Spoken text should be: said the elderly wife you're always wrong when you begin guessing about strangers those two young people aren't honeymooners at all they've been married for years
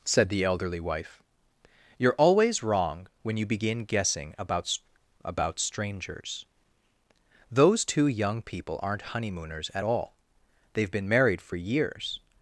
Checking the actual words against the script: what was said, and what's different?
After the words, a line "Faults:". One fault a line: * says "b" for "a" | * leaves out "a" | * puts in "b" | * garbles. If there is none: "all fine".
said the elderly wife you're always wrong when you begin guessing about about strangers those two young people aren't honeymooners at all they've been married for years
Faults:
* puts in "about"